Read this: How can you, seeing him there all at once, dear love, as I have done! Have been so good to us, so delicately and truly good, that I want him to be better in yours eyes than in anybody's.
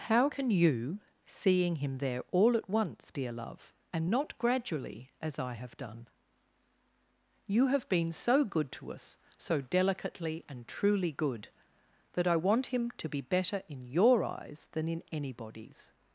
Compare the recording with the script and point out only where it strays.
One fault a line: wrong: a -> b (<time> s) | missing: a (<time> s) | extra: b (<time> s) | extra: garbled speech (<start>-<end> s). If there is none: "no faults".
extra: and not gradually (3.9 s)
extra: You (7.5 s)
wrong: yours -> your (13.9 s)